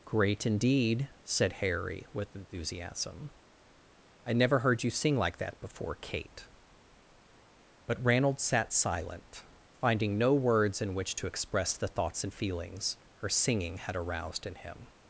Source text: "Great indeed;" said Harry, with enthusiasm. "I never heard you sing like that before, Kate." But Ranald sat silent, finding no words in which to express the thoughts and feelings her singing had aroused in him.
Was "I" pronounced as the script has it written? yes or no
yes